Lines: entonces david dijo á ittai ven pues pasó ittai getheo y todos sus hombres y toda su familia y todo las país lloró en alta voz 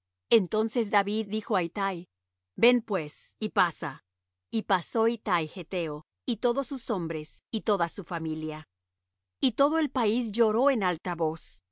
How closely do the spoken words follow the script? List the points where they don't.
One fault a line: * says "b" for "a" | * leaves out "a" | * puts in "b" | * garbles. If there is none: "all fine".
* puts in "y pasa y"
* says "el" for "las"